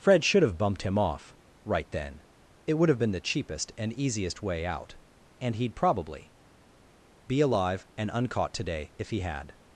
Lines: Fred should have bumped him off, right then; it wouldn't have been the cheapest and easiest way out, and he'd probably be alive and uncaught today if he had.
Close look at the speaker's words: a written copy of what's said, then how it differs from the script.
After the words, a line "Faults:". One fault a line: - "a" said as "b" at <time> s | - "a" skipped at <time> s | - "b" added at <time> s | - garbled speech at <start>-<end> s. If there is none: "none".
Fred should have bumped him off, right then; it would have been the cheapest and easiest way out, and he'd probably be alive and uncaught today if he had.
Faults:
- "wouldn't" said as "would" at 2.7 s